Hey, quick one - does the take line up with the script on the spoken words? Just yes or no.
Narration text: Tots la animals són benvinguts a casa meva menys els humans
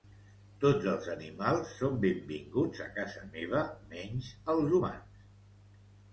no